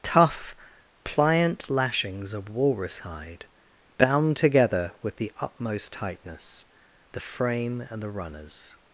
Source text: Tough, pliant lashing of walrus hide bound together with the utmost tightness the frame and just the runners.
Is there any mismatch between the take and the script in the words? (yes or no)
yes